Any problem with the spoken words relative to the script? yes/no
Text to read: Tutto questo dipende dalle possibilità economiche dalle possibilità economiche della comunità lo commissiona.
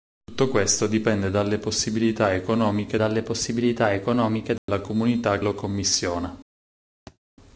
no